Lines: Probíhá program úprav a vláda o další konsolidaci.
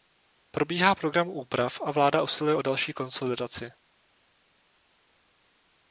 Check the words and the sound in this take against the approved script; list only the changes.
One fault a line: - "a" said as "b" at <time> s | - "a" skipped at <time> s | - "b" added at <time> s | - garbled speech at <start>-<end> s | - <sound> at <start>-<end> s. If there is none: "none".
- "usiluje" added at 2.2 s